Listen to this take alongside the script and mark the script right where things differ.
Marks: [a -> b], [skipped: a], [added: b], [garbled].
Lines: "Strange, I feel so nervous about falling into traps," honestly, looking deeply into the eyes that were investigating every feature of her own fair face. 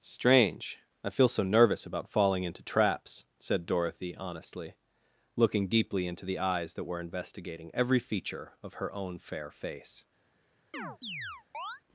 "Strange, I feel so nervous about falling into traps," [added: said Dorothy] honestly, looking deeply into the eyes that were investigating every feature of her own fair face.